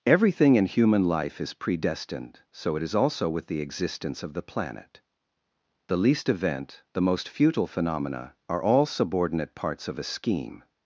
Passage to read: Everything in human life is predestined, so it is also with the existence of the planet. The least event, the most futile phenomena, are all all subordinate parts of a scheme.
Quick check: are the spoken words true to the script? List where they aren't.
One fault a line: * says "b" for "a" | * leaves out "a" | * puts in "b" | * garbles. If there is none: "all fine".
* leaves out "all"